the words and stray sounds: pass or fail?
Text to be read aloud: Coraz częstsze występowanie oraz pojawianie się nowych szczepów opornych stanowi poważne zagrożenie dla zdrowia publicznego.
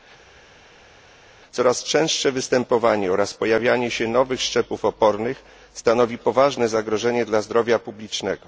pass